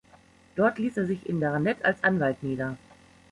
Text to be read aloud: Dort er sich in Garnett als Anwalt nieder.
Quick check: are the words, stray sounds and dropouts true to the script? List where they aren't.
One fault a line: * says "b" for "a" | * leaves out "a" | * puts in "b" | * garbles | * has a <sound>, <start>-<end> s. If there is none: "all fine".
* puts in "ließ"